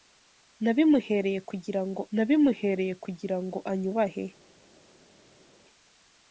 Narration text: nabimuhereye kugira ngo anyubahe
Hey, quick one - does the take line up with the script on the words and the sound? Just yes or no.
no